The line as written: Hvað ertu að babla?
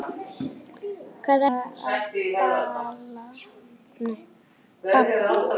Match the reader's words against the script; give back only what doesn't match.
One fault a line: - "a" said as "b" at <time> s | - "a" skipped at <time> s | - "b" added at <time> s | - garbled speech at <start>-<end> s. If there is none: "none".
- "ertu" skipped at 1.4 s